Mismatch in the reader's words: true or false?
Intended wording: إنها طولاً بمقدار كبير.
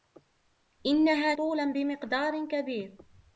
false